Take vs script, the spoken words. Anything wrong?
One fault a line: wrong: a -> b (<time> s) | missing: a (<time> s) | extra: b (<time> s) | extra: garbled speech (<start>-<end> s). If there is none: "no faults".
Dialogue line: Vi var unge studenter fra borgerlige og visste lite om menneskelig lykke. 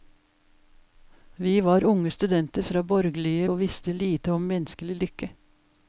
no faults